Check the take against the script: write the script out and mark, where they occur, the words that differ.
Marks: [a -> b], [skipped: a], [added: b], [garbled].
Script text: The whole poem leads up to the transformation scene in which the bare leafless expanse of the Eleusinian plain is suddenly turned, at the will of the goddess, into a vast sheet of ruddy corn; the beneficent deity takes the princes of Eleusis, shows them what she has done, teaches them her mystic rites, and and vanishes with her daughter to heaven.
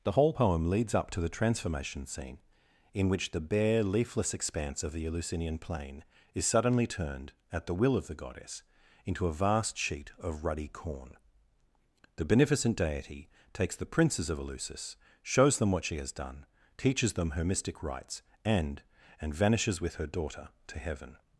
The whole poem leads up to the transformation scene in which the bare leafless expanse of the Eleusinian plain is suddenly turned, at the will of the goddess, into a vast sheet of ruddy corn; the beneficent deity takes the princes of Eleusis, shows them what she has done, teaches them her mystic rites, and and vanishes with her daughter to heaven.